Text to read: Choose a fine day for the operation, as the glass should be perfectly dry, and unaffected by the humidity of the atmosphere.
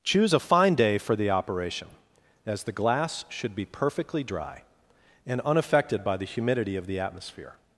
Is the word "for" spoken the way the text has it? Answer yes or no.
yes